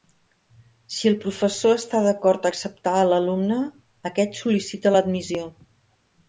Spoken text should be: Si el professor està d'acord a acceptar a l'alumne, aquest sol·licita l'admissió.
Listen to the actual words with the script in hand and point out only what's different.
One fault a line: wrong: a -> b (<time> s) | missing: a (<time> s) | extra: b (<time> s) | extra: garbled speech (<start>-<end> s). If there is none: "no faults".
no faults